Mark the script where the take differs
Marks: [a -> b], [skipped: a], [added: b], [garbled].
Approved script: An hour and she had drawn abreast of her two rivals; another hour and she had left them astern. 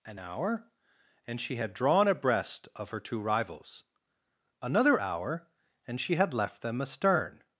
An hour and she had drawn abreast of her two rivals; another hour and she had left them astern.